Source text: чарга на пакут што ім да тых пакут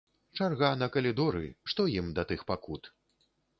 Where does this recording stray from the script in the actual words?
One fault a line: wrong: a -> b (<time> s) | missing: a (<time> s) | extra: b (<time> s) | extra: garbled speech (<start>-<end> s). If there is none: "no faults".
wrong: пакут -> калідоры (0.9 s)